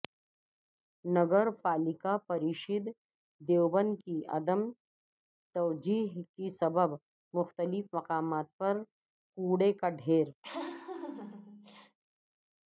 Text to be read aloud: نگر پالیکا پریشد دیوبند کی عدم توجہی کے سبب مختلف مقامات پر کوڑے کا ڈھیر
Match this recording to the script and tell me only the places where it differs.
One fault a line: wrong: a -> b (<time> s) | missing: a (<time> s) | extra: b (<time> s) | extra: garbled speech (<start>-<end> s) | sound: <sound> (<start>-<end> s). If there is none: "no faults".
sound: laugh (10.4-12.0 s)